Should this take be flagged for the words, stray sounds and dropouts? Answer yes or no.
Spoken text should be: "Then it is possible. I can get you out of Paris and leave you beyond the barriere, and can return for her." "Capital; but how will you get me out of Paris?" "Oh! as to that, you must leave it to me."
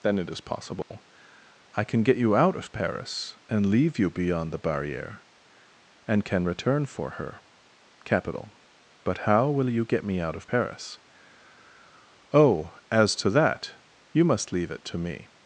yes